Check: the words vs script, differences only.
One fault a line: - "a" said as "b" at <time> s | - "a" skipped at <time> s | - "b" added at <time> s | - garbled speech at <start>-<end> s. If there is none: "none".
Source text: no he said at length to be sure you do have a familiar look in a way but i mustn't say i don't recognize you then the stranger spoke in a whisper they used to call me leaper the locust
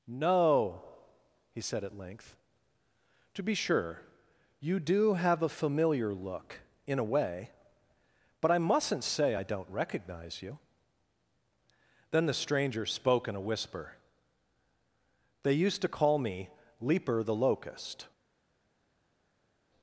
none